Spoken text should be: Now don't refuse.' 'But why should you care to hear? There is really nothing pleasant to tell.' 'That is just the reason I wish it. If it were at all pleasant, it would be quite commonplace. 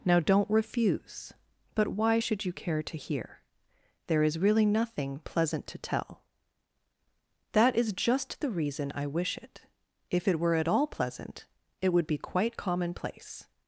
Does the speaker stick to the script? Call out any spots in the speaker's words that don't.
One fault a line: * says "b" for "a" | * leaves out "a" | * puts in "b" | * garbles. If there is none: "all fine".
all fine